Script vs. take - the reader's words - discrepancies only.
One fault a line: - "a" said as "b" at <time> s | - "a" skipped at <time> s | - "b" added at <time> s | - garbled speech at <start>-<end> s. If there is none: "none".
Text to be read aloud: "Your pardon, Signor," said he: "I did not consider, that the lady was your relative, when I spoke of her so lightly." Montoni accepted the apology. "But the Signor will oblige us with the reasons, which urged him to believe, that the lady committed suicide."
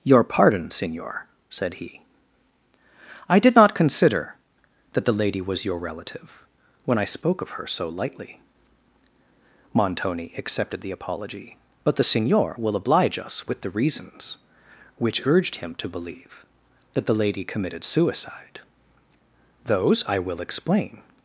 - "Those I will explain" added at 19.7 s